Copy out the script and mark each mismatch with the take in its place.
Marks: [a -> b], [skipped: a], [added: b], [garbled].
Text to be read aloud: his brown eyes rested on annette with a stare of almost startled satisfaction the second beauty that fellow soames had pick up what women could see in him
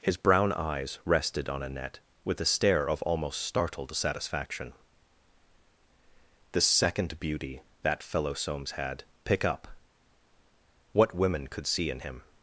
his brown eyes rested on annette with a stare of almost startled satisfaction the second beauty that fellow soames had pick up what women could see in him